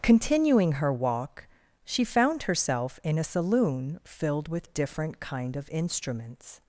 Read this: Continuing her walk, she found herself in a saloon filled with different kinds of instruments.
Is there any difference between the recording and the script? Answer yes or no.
yes